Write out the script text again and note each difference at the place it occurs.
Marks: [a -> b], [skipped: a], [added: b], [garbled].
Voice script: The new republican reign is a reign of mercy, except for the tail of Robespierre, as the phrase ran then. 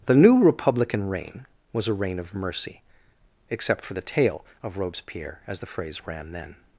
The new republican reign [is -> was] a reign of mercy, except for the tail of Robespierre, as the phrase ran then.